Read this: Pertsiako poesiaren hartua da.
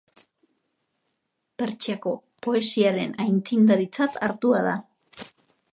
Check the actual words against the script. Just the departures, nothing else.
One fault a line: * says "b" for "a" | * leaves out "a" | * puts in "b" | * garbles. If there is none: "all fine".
* puts in "aitzindaritzat"